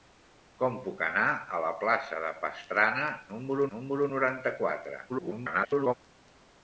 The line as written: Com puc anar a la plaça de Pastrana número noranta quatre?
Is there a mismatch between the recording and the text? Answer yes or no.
yes